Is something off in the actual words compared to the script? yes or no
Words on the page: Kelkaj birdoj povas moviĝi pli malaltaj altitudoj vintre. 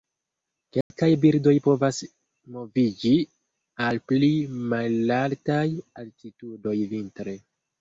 yes